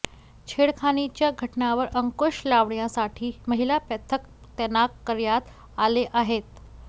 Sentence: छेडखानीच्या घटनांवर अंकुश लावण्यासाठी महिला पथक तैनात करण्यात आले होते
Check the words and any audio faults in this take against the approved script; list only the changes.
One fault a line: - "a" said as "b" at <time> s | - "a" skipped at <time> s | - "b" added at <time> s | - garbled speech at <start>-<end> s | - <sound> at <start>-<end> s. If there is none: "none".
- "होते" said as "आहेत" at 6.1 s